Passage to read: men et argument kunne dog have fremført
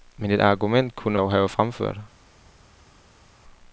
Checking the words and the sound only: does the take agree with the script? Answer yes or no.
yes